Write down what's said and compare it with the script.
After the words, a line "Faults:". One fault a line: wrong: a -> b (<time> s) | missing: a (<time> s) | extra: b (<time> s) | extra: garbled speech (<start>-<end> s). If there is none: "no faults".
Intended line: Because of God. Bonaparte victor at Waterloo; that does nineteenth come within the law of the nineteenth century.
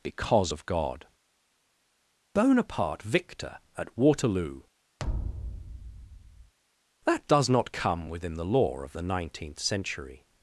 Because of God. Bonaparte victor at Waterloo; that does not come within the law of the nineteenth century.
Faults:
wrong: nineteenth -> not (7.5 s)